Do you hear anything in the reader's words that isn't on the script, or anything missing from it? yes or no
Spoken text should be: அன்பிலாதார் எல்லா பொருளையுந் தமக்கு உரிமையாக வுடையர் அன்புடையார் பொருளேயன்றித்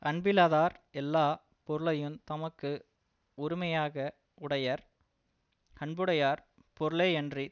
no